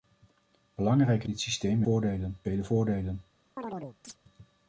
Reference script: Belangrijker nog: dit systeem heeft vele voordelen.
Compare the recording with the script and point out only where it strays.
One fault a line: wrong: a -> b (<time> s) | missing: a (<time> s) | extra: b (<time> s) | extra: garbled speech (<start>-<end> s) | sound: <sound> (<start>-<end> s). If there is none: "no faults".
missing: nog (1.3 s)
wrong: heeft -> voordelen (1.8 s)
sound: chirp (3.6-4.2 s)